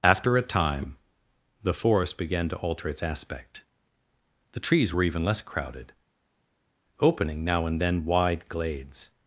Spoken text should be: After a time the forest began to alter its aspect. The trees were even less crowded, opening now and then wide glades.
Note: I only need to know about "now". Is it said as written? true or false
true